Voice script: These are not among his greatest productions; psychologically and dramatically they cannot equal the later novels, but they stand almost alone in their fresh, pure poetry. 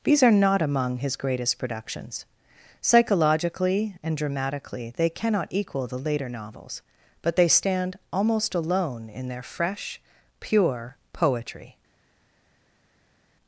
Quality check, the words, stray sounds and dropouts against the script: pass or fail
pass